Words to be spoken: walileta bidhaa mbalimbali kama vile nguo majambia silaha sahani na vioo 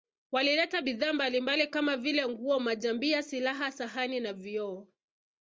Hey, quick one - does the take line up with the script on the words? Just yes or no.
yes